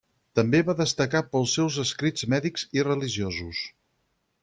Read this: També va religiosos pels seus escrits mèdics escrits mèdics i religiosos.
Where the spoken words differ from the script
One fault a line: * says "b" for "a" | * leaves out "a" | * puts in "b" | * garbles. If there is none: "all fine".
* says "destacar" for "religiosos"
* leaves out "escrits mèdics"